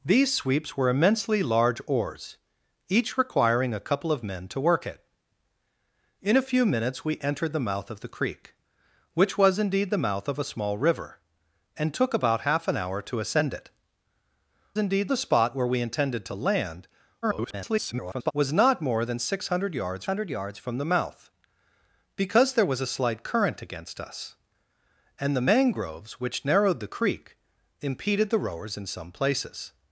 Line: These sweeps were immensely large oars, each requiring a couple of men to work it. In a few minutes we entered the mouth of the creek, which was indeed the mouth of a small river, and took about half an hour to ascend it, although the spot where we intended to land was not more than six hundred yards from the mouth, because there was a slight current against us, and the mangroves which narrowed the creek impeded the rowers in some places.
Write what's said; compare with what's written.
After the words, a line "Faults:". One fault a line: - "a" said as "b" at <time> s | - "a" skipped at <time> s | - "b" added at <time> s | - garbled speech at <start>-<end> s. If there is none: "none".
These sweeps were immensely large oars, each requiring a couple of men to work it. In a few minutes we entered the mouth of the creek, which was indeed the mouth of a small river, and took about half an hour to ascend it, indeed the spot where we intended to land [garbled] was not more than six hundred yards hundred yards from the mouth, because there was a slight current against us, and the mangroves which narrowed the creek impeded the rowers in some places.
Faults:
- "although" said as "indeed" at 14.8 s
- garbled speech at 17.2-18.3 s
- "hundred yards" added at 20.0 s